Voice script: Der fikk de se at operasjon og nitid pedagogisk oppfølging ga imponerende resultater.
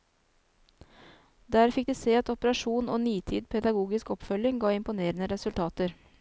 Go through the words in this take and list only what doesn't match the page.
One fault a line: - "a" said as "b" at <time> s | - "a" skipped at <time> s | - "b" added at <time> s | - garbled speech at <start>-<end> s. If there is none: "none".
none